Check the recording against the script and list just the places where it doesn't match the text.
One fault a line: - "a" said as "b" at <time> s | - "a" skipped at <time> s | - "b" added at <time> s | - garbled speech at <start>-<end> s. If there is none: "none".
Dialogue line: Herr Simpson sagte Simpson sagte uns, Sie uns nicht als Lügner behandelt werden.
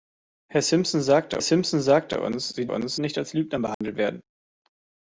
none